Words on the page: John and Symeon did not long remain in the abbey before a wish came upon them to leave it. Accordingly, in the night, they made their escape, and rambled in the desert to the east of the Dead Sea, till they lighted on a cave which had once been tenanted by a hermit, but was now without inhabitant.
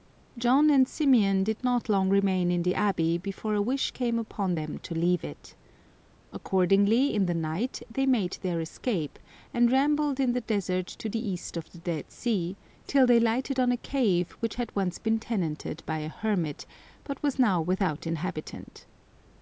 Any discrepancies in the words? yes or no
no